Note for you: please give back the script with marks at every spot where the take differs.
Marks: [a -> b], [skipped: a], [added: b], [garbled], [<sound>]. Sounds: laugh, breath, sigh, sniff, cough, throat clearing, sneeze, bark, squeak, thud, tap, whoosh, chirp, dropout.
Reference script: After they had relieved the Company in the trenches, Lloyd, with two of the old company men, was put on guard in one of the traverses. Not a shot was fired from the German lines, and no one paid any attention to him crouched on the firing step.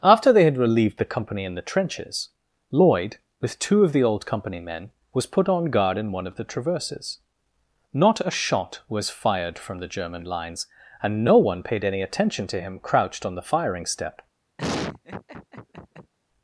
After they had relieved the Company in the trenches, Lloyd, with two of the old company men, was put on guard in one of the traverses. Not a shot was fired from the German lines, and no one paid any attention to him crouched on the firing step. [laugh]